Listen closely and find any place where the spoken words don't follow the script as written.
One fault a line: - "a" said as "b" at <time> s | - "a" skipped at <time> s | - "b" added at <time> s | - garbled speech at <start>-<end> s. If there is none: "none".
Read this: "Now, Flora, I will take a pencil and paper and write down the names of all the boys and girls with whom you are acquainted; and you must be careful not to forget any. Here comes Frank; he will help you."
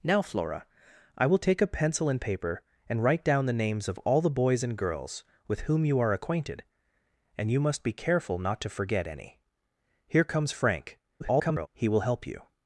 - garbled speech at 11.2-11.7 s